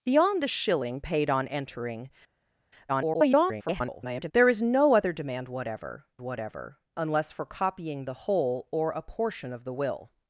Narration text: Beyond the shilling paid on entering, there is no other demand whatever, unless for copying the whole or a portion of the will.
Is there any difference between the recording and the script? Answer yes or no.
yes